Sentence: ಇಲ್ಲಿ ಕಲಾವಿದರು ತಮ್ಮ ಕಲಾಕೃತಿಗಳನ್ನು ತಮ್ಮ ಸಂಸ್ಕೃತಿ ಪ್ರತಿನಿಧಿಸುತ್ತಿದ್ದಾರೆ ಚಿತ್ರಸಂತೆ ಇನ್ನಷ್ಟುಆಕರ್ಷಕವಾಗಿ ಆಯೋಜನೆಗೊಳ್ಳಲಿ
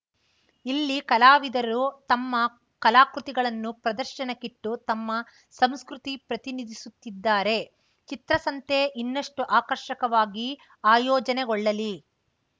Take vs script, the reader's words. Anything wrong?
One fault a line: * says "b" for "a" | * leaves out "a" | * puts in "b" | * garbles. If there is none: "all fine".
* puts in "ಪ್ರದರ್ಶನಕ್ಕಿಟ್ಟು"